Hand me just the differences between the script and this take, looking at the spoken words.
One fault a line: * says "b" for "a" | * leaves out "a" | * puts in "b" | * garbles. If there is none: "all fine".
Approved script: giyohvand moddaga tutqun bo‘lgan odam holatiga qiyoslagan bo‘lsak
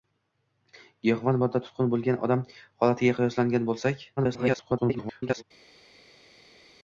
* garbles